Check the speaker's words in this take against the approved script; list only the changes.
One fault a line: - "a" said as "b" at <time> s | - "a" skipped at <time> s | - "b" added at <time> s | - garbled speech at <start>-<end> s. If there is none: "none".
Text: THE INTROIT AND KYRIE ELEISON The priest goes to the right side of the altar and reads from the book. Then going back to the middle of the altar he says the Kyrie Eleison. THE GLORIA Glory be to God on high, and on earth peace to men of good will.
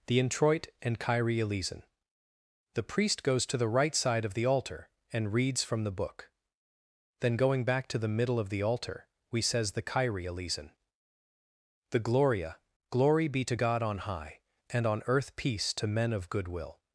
- "he" said as "we" at 9.3 s